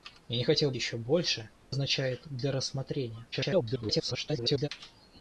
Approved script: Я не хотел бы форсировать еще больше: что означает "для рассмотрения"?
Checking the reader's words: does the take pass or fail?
fail